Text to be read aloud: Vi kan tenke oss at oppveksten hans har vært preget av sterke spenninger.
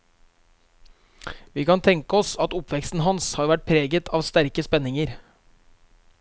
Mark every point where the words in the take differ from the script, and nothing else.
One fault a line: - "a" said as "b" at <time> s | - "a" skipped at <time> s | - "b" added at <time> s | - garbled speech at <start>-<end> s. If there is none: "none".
none